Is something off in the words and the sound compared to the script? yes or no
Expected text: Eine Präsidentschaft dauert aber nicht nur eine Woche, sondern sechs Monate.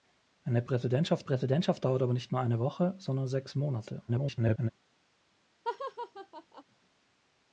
yes